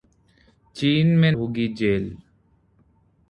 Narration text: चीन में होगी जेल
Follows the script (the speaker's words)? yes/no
yes